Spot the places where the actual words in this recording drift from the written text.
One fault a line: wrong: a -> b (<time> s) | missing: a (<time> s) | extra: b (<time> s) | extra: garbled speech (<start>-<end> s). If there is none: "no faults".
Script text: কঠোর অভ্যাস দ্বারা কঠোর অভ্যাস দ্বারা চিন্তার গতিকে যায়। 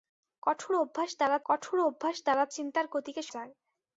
no faults